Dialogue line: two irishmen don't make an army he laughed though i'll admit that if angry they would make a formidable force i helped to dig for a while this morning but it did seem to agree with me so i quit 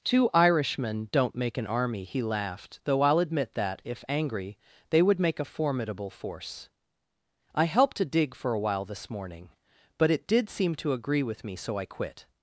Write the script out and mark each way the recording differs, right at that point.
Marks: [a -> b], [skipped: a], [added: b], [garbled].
two irishmen don't make an army he laughed though i'll admit that if angry they would make a formidable force i helped to dig for a while this morning but it did seem to agree with me so i quit